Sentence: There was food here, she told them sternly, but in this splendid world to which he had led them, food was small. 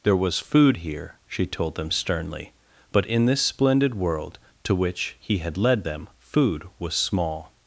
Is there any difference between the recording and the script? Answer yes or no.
no